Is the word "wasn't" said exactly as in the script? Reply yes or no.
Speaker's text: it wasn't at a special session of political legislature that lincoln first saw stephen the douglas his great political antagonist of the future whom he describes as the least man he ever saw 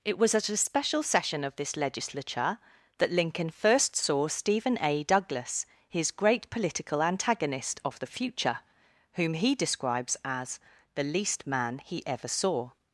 no